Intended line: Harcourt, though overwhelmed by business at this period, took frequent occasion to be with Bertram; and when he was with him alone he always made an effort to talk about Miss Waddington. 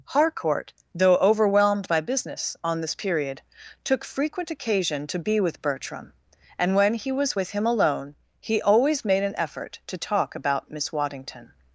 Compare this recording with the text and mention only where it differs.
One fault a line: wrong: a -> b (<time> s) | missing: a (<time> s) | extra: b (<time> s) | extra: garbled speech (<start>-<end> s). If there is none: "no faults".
wrong: at -> on (2.6 s)